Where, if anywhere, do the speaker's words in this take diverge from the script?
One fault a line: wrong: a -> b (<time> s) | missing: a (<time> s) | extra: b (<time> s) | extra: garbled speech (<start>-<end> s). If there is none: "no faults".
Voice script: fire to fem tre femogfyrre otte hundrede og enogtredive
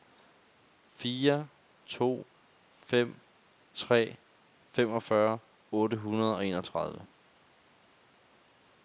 no faults